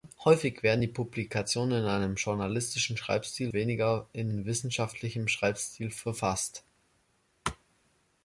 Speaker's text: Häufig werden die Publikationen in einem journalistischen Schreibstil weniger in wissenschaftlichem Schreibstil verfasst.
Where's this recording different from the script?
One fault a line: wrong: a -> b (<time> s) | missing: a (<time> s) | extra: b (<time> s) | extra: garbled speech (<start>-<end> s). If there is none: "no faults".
no faults